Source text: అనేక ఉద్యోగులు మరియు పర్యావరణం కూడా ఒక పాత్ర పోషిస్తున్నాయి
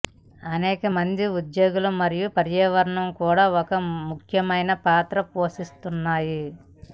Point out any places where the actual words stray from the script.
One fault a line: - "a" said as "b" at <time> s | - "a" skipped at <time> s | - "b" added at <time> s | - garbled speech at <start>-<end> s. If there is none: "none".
- "మంది" added at 0.9 s
- "ముఖ్యమైన" added at 4.1 s